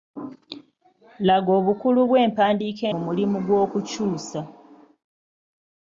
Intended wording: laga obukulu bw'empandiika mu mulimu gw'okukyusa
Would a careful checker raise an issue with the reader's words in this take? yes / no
no